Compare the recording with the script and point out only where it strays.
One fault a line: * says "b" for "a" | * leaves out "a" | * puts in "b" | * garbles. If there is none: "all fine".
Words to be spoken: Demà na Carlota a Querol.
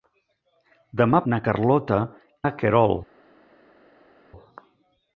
all fine